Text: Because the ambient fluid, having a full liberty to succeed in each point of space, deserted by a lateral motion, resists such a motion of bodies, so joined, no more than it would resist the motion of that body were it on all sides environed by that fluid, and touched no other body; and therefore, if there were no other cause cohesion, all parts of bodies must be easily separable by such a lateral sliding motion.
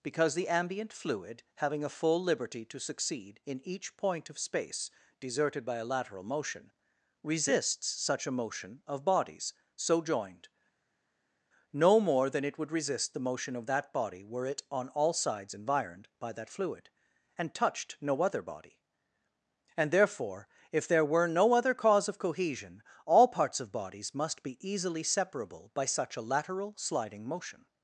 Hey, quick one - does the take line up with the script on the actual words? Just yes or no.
no